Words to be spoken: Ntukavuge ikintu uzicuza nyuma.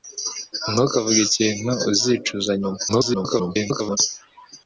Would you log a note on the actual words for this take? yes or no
yes